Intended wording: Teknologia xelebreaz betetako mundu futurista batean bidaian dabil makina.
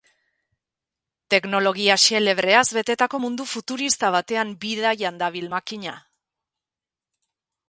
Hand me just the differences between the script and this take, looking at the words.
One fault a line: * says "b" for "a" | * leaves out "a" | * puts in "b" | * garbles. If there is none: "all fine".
all fine